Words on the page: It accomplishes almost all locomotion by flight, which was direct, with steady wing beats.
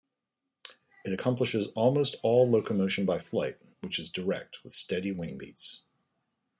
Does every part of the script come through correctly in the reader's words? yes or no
no